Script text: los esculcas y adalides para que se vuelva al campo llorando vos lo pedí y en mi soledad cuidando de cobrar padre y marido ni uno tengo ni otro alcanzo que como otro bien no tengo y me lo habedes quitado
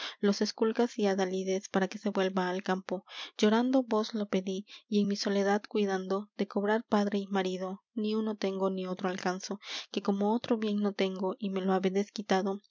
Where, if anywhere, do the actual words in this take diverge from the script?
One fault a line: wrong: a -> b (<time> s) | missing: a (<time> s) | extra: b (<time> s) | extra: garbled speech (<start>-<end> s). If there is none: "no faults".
no faults